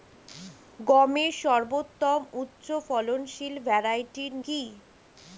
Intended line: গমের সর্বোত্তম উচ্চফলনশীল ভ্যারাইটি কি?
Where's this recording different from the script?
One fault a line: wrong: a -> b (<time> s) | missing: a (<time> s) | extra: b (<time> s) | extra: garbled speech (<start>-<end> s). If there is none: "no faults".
no faults